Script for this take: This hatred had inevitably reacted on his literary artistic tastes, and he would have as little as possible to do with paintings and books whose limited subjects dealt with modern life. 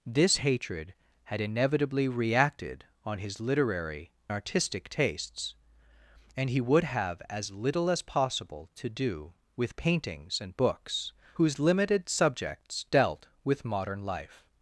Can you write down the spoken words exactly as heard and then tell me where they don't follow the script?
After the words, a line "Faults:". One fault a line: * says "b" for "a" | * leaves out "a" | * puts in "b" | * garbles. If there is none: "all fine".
This hatred had inevitably reacted on his literary artistic tastes, and he would have as little as possible to do with paintings and books whose limited subjects dealt with modern life.
Faults:
all fine